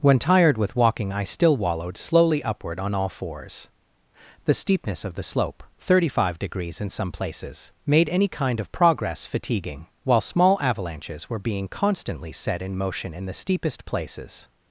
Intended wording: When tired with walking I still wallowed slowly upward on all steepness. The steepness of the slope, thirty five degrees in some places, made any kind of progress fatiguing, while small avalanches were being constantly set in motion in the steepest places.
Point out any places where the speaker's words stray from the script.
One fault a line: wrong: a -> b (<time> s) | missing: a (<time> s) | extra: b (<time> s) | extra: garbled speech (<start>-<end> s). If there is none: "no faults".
wrong: steepness -> fours (3.1 s)